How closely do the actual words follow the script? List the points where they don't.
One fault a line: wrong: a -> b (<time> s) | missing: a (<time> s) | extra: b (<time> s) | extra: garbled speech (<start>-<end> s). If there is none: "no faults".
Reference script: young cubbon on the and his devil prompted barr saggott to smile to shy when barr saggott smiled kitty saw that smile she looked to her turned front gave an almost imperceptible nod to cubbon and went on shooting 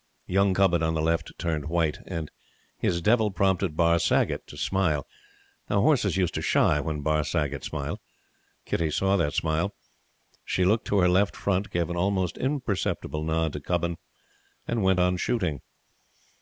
extra: left turned white (1.0 s)
extra: now horses used (5.7 s)
wrong: turned -> left (11.1 s)